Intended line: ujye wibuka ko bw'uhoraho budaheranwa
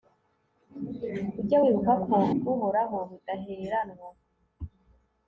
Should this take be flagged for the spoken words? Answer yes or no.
no